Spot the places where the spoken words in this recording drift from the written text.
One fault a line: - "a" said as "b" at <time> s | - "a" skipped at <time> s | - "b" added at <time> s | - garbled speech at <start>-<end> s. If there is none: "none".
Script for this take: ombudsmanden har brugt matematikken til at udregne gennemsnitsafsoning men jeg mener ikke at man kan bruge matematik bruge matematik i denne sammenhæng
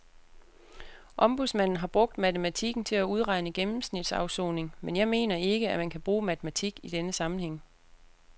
- "bruge matematik" skipped at 6.8 s